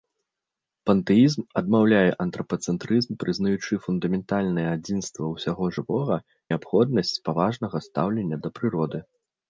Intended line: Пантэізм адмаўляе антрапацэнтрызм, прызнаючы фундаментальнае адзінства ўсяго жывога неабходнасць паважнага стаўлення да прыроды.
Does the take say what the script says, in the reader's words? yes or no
yes